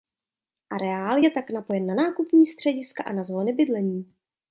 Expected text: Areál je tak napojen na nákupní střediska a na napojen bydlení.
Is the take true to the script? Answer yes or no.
no